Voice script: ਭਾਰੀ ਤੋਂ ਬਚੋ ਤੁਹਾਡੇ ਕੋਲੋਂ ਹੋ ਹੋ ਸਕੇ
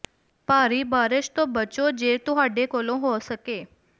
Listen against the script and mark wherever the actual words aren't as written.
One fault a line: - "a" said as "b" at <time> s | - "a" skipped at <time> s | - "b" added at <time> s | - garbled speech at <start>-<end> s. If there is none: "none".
- "ਬਾਰਸ਼" added at 0.8 s
- "ਜੇ" added at 1.9 s
- "ਹੋ" skipped at 3.2 s